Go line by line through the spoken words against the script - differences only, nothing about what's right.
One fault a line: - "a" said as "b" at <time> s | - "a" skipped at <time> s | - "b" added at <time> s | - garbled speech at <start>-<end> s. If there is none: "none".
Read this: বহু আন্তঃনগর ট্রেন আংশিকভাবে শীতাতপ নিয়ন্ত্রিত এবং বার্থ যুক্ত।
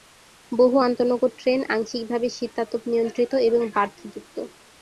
none